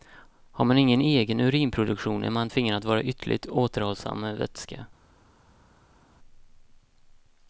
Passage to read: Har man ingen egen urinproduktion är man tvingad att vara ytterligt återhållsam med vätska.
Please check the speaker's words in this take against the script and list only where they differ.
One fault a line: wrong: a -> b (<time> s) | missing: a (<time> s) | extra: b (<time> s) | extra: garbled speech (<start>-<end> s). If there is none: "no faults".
no faults